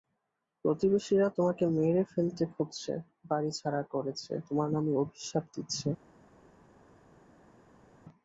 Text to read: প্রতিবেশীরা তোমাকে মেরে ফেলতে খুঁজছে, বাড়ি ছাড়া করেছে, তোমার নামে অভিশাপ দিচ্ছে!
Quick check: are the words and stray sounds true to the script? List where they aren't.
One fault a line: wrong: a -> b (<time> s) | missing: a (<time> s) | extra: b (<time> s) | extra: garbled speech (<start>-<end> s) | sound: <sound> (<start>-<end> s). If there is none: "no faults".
no faults